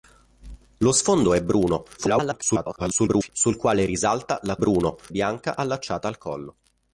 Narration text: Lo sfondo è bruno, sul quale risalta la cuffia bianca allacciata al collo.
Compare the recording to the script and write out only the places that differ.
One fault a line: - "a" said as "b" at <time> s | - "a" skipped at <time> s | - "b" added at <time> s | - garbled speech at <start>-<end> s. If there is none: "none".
- garbled speech at 2.0-3.3 s
- "cuffia" said as "bruno" at 4.6 s